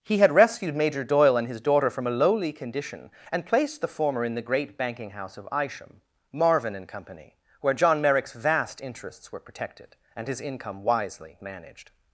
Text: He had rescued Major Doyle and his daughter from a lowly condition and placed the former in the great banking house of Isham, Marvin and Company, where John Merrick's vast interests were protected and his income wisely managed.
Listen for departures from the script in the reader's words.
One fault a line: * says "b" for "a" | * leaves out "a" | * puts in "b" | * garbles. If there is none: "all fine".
all fine